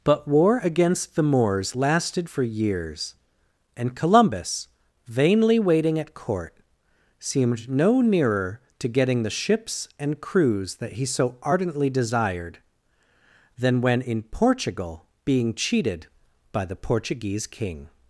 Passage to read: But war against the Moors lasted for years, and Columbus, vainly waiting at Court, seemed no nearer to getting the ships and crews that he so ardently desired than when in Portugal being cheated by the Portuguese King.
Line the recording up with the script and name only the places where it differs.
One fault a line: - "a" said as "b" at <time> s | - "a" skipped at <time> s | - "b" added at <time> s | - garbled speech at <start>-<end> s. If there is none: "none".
none